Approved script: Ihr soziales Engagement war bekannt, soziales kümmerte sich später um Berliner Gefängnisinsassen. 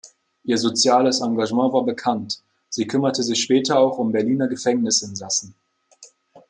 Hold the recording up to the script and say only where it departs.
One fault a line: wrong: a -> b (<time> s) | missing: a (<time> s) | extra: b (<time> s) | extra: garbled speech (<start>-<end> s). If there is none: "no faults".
wrong: soziales -> sie (2.7 s)
extra: auch (3.8 s)